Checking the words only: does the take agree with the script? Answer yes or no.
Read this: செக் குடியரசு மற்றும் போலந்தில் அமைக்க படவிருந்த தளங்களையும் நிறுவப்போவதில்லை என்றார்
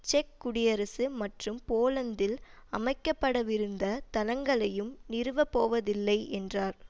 yes